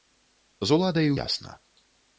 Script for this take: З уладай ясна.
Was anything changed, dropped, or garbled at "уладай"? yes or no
no